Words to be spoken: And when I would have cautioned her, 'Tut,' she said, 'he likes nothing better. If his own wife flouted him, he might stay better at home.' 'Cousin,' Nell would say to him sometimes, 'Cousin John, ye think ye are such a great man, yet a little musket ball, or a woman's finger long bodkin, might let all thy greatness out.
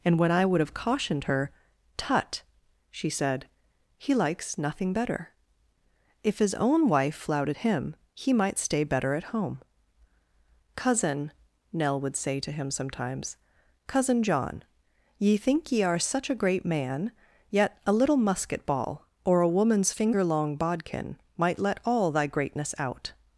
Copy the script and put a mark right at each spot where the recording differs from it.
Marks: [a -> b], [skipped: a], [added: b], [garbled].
And when I would have cautioned her, 'Tut,' she said, 'he likes nothing better. If his own wife flouted him, he might stay better at home.' 'Cousin,' Nell would say to him sometimes, 'Cousin John, ye think ye are such a great man, yet a little musket ball, or a woman's finger long bodkin, might let all thy greatness out.